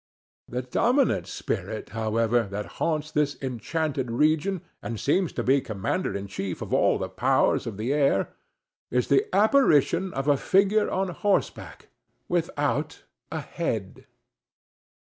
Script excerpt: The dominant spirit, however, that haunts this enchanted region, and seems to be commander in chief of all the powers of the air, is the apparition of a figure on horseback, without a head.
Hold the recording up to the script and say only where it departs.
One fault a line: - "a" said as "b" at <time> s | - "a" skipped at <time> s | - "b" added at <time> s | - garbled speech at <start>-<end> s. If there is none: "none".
none